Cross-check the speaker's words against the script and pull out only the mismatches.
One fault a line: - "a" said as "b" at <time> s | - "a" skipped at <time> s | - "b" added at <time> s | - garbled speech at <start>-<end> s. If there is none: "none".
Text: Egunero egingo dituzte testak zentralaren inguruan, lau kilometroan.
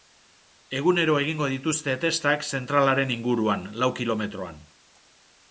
none